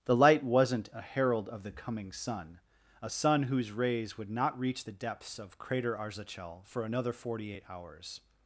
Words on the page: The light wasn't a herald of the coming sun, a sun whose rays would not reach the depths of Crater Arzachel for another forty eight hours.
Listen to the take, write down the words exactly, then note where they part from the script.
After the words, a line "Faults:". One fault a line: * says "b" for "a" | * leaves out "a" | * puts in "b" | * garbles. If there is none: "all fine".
The light wasn't a herald of the coming sun, a sun whose rays would not reach the depths of Crater Arzachel for another forty eight hours.
Faults:
all fine